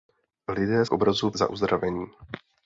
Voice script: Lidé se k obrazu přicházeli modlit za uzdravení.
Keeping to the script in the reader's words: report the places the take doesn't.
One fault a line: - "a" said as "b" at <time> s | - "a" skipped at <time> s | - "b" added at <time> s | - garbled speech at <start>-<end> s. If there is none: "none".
- "se" skipped at 0.8 s
- "přicházeli modlit" skipped at 1.3 s